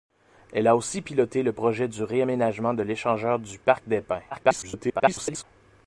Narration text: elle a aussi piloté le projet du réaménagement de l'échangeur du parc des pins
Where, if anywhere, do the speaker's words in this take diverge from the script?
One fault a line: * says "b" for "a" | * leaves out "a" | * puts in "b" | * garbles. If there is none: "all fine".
* garbles